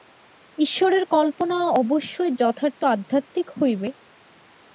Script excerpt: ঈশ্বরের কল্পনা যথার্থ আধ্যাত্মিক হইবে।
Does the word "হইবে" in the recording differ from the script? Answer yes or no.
no